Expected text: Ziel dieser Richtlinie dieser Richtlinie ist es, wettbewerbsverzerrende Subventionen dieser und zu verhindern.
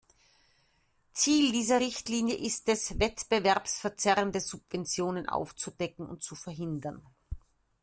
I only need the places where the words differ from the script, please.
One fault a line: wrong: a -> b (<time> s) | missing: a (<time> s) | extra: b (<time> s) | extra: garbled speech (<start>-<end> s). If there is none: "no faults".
missing: dieser Richtlinie (2.4 s)
wrong: dieser -> aufzudecken (5.3 s)